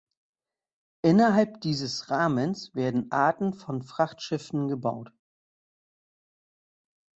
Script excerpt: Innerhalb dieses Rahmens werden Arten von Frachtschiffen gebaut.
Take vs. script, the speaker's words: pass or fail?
pass